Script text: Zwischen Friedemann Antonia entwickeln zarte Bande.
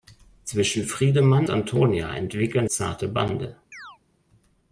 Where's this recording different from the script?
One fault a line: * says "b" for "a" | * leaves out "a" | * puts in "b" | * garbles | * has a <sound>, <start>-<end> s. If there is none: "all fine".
* has a chirp, 3.7-4.0 s